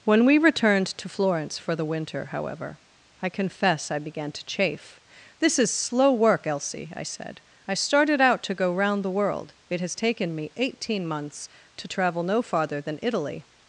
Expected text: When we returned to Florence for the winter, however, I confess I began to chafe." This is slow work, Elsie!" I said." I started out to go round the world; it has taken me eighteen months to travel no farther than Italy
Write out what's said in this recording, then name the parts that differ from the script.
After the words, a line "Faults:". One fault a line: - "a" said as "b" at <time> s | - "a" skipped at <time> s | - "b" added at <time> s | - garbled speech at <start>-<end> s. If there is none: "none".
When we returned to Florence for the winter, however, I confess I began to chafe." This is slow work, Elsie!" I said." I started out to go round the world; it has taken me eighteen months to travel no farther than Italy
Faults:
none